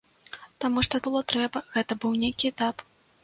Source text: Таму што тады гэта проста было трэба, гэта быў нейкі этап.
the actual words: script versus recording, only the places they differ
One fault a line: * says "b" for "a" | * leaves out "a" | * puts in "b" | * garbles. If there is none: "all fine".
* leaves out "тады гэта проста"